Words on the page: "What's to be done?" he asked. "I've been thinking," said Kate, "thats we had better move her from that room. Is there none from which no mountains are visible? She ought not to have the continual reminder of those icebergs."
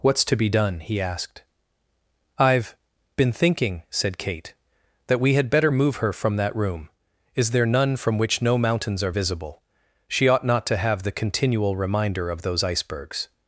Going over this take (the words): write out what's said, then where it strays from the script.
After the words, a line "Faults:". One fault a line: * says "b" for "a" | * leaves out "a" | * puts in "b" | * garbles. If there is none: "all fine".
"What's to be done?" he asked. "I've been thinking," said Kate, "that we had better move her from that room. Is there none from which no mountains are visible? She ought not to have the continual reminder of those icebergs."
Faults:
* says "that" for "thats"